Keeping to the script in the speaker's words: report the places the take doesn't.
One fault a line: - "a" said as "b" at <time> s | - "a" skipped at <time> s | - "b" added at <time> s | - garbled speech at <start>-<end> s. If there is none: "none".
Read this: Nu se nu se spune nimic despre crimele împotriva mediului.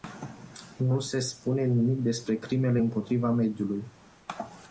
- "nu se" skipped at 1.2 s